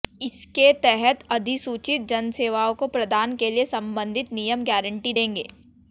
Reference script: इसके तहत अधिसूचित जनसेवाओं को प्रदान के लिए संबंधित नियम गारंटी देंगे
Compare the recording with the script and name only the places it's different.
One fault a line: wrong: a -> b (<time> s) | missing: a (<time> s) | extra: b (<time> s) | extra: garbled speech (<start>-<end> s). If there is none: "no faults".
no faults